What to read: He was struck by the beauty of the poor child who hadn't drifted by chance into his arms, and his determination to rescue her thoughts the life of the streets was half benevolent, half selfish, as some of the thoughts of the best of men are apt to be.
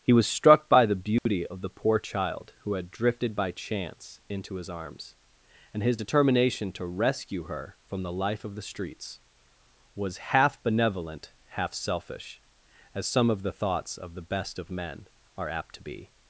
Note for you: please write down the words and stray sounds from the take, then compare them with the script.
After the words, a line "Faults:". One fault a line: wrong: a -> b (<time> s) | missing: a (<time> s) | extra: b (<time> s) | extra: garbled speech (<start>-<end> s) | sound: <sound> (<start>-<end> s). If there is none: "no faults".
He was struck by the beauty of the poor child who had drifted by chance into his arms, and his determination to rescue her from the life of the streets was half benevolent, half selfish, as some of the thoughts of the best of men are apt to be.
Faults:
sound: dropout (1.2-1.3 s)
wrong: hadn't -> had (2.7 s)
wrong: thoughts -> from (7.8 s)